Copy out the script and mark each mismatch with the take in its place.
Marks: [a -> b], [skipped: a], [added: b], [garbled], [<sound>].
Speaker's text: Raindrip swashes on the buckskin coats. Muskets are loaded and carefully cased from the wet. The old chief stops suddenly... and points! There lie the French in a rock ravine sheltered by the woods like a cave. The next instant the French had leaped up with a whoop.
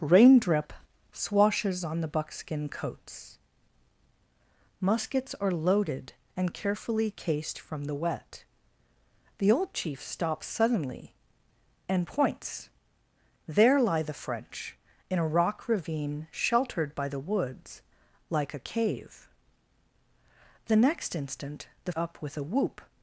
Raindrip swashes on the buckskin coats. Muskets are loaded and carefully cased from the wet. The old chief stops suddenly... and points! There lie the French in a rock ravine sheltered by the woods like a cave. The next instant the [skipped: French had leaped] up with a whoop.